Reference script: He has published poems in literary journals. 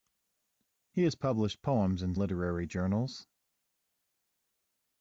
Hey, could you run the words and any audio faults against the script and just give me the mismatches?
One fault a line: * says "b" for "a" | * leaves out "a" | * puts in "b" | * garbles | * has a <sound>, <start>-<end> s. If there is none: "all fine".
all fine